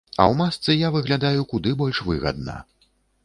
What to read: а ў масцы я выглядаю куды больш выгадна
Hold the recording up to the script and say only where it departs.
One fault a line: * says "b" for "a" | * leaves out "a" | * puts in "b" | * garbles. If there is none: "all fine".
all fine